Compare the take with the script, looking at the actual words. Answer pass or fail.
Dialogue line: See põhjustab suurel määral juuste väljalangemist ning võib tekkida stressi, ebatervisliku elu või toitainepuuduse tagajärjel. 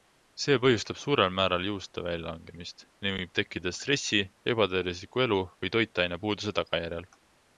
pass